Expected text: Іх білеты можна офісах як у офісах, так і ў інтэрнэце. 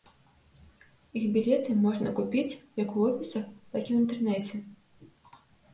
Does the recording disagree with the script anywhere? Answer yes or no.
yes